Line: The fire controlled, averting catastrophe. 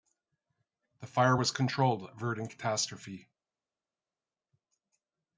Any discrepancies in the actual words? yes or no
yes